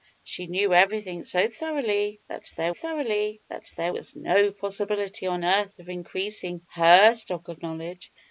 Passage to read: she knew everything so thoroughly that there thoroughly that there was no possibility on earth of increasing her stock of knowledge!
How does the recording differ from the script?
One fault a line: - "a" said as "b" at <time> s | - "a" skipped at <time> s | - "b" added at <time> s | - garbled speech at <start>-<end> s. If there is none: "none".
none